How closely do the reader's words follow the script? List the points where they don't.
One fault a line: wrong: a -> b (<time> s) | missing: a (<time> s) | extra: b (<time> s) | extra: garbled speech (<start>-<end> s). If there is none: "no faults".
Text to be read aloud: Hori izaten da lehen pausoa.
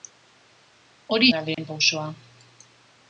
missing: izaten (1.3 s)